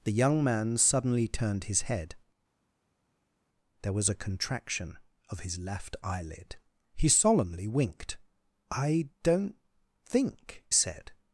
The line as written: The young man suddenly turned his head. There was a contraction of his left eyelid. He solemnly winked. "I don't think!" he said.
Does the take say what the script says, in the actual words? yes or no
no